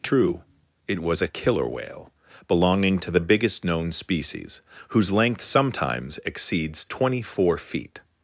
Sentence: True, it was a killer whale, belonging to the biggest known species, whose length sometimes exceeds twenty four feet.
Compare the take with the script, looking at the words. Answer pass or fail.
pass